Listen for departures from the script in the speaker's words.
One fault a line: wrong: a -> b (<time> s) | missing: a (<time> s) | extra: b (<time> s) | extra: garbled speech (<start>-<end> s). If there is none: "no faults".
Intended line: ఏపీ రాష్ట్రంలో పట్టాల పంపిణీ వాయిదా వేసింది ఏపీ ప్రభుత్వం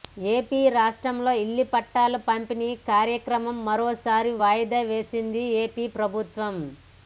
extra: ఇళ్ల (1.4 s)
extra: కార్యక్రమం మరోసారి (2.9 s)